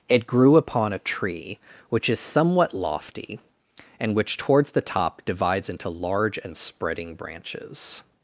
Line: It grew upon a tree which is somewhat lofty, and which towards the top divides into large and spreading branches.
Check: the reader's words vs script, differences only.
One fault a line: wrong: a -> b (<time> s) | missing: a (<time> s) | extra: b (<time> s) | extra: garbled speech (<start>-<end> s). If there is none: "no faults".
no faults